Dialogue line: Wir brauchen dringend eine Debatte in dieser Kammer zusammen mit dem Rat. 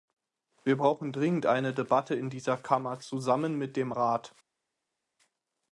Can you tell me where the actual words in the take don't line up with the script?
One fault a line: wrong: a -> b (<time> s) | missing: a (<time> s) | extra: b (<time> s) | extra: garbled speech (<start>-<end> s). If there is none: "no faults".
no faults